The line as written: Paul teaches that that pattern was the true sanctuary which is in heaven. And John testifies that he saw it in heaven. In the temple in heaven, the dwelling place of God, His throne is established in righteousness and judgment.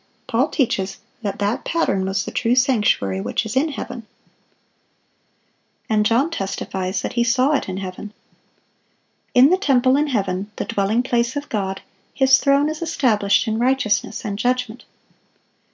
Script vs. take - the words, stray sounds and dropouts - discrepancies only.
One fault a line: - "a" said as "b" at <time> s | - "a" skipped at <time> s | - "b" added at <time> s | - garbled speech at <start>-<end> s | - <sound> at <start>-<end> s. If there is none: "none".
none